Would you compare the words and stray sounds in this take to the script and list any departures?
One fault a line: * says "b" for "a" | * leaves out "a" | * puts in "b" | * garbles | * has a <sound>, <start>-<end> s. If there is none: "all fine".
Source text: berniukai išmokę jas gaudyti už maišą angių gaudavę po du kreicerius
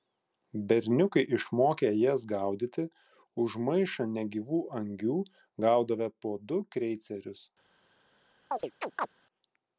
* puts in "negyvų"
* has a chirp, 8.5-9.1 s